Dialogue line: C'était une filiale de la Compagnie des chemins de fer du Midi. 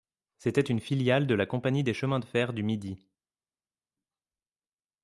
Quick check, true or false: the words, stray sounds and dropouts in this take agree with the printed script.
true